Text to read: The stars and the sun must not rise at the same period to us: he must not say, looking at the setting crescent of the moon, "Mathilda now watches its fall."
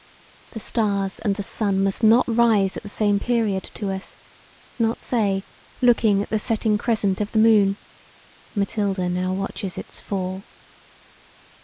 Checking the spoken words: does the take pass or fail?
fail